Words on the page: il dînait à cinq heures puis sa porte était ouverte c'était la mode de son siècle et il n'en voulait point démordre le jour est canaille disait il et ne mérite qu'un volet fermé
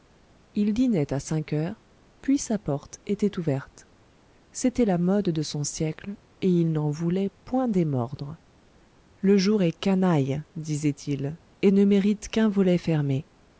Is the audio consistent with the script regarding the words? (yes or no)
yes